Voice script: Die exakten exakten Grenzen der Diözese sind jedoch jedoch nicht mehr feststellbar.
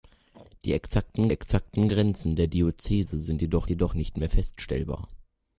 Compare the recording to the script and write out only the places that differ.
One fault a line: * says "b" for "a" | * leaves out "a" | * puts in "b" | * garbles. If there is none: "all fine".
all fine